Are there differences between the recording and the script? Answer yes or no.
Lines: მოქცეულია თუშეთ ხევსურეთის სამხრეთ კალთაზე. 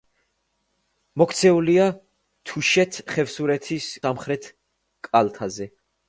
no